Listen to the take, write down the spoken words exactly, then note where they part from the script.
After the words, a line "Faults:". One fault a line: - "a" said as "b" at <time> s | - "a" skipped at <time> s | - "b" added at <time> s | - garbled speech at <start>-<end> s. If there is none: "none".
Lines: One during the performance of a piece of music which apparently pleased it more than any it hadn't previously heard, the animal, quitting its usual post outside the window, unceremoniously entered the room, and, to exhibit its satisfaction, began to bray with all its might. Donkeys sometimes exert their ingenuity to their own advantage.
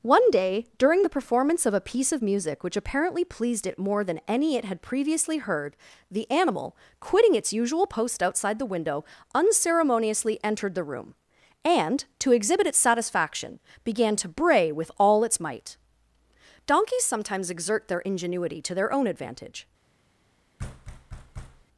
One day, during the performance of a piece of music which apparently pleased it more than any it had previously heard, the animal, quitting its usual post outside the window, unceremoniously entered the room, and, to exhibit its satisfaction, began to bray with all its might. Donkeys sometimes exert their ingenuity to their own advantage.
Faults:
- "day" added at 0.3 s
- "hadn't" said as "had" at 4.6 s